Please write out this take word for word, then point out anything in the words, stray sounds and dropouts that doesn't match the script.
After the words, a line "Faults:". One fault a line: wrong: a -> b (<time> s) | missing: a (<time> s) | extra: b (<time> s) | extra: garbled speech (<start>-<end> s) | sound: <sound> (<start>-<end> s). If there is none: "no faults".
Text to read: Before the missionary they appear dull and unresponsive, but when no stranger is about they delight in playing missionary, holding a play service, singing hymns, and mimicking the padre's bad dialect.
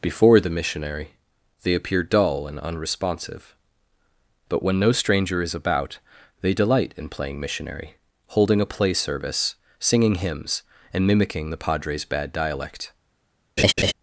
Before the missionary they appear dull and unresponsive, but when no stranger is about they delight in playing missionary, holding a play service, singing hymns, and mimicking the padre's bad dialect.
Faults:
sound: laugh (13.6-13.9 s)